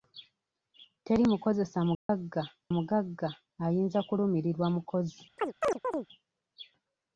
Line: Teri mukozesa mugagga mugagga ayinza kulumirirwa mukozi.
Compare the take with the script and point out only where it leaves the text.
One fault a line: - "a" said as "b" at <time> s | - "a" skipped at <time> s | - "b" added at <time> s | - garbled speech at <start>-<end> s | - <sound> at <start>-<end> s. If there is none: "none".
- dropout at 1.9-2.1 s
- chirp at 5.4-6.1 s